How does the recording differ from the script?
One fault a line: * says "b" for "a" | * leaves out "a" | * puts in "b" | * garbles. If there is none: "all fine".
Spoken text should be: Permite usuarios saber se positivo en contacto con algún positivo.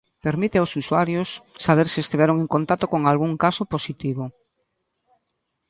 * puts in "aos"
* says "estiveron" for "positivo"
* puts in "caso"